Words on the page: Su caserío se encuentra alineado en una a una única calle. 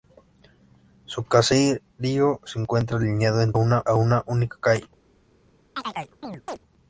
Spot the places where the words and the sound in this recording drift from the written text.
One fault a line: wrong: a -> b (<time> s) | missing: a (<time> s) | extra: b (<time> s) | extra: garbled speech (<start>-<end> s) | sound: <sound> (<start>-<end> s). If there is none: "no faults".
sound: chirp (5.8-6.6 s)